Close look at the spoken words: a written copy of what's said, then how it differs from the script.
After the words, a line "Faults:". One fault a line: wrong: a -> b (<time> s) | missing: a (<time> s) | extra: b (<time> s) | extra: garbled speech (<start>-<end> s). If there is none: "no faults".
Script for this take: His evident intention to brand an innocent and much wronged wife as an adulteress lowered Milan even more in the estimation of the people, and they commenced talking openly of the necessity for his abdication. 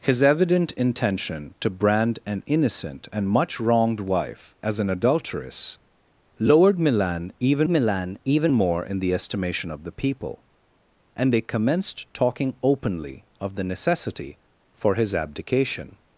His evident intention to brand an innocent and much wronged wife as an adulteress lowered Milan even Milan even more in the estimation of the people, and they commenced talking openly of the necessity for his abdication.
Faults:
extra: Milan even (7.7 s)